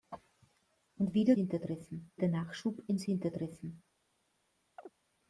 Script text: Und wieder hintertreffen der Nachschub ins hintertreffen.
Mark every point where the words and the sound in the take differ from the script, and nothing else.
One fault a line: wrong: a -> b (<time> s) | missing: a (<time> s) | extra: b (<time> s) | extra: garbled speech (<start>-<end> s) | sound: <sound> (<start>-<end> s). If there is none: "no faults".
sound: chirp (4.8-4.9 s)